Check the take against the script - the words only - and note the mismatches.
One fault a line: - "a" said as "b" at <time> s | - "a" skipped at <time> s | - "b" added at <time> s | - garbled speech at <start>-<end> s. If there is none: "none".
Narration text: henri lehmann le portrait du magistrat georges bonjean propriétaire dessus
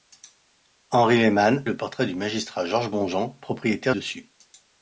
none